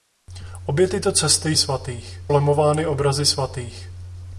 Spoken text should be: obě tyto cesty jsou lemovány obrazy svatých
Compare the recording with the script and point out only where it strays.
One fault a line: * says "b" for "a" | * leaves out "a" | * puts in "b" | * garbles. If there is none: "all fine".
* says "svatých" for "jsou"